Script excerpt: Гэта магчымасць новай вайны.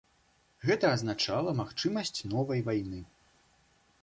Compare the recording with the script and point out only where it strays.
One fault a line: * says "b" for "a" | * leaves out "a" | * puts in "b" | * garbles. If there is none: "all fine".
* puts in "азначала"